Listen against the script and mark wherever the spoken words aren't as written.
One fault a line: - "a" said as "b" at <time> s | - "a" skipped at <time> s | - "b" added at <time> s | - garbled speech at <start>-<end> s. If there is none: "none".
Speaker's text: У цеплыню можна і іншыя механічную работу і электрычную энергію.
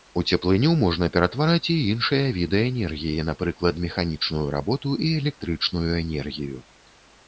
- "ператвараць" added at 1.2 s
- "віды энергіі напрыклад" added at 2.4 s